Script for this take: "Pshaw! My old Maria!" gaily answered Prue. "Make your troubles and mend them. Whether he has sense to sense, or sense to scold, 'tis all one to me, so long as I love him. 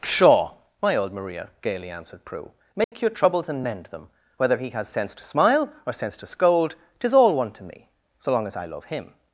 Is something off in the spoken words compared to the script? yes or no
yes